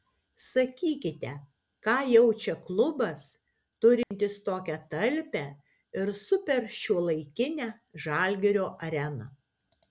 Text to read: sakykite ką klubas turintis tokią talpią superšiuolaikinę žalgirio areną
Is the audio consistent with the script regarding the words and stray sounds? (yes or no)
no